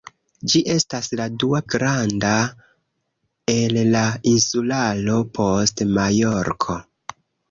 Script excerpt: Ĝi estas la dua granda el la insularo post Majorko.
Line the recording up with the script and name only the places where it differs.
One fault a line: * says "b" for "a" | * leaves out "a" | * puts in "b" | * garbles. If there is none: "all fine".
all fine